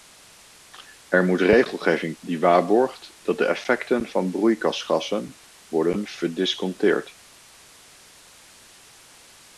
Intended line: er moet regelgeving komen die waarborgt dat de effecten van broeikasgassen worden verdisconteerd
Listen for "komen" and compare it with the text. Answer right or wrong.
wrong